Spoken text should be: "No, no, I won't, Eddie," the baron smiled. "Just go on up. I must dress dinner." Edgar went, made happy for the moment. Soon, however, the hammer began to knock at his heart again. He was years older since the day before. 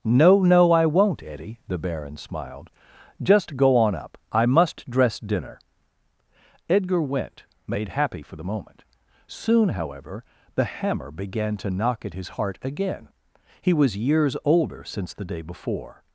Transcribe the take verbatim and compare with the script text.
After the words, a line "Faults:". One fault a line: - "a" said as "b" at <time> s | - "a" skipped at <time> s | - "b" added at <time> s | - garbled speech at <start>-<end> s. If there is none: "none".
"No, no, I won't, Eddie," the baron smiled. "Just go on up. I must dress dinner." Edgar went, made happy for the moment. Soon, however, the hammer began to knock at his heart again. He was years older since the day before.
Faults:
none